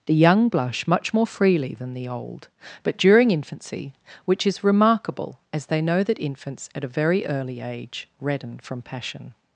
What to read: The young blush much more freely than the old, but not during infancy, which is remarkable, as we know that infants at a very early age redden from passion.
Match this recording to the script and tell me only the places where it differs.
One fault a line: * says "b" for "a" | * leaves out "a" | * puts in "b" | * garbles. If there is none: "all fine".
* leaves out "not"
* says "they" for "we"